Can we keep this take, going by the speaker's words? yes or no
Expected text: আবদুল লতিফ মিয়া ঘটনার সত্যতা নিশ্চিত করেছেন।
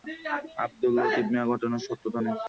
yes